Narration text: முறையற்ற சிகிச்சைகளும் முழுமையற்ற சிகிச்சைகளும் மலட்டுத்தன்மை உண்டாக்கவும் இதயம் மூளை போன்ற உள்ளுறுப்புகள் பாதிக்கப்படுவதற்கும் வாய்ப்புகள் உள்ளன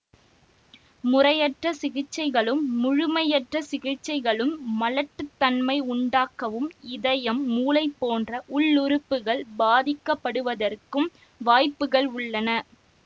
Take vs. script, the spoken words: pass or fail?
pass